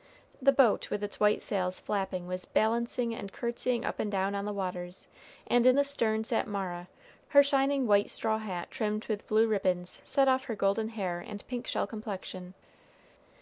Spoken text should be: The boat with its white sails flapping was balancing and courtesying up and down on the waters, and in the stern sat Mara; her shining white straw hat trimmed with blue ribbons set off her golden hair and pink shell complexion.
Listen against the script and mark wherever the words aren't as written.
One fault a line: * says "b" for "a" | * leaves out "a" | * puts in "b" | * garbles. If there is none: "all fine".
all fine